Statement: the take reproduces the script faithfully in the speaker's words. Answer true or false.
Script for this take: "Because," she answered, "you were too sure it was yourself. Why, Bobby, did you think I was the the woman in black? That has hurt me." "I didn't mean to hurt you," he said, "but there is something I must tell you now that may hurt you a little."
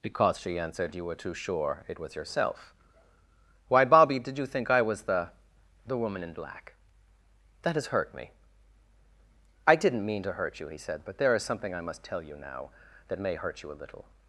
true